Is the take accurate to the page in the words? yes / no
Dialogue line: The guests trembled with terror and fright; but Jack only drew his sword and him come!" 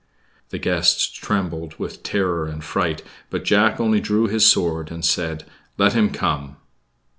no